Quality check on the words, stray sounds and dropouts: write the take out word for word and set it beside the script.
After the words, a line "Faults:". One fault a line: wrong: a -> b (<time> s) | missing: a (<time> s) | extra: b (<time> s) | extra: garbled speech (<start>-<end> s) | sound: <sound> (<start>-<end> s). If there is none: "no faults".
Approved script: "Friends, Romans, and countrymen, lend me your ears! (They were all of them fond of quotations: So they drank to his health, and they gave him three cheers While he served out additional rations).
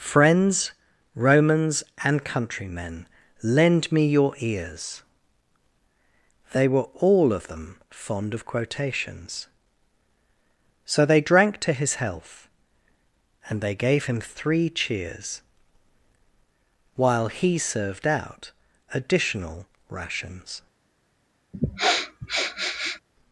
"Friends, Romans, and countrymen, lend me your ears! (They were all of them fond of quotations: So they drank to his health, and they gave him three cheers While he served out additional rations).
Faults:
sound: sniff (21.5-23.0 s)